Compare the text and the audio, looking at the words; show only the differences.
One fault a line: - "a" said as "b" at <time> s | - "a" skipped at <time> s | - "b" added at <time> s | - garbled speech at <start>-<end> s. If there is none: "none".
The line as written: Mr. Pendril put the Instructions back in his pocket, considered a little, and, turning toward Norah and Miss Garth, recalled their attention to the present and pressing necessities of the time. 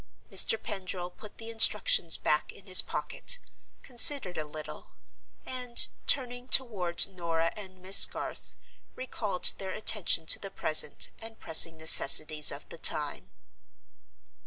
none